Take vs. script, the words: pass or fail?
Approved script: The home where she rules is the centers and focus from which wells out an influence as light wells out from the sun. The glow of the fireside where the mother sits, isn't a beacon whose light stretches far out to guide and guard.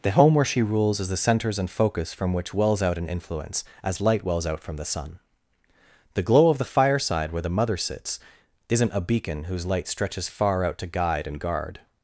pass